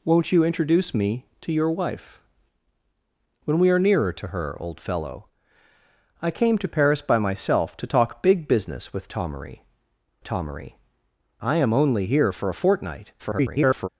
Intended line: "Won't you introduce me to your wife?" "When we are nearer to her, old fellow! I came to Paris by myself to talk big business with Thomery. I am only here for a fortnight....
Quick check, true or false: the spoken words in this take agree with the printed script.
false